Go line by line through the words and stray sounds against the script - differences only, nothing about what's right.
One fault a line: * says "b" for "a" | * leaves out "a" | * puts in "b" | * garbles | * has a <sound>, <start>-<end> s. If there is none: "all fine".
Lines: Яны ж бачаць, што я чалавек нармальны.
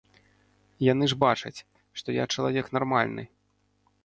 all fine